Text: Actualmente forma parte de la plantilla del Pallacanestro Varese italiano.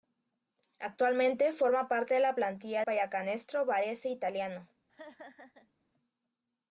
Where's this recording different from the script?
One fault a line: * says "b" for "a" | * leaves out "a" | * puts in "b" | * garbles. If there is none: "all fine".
* leaves out "del"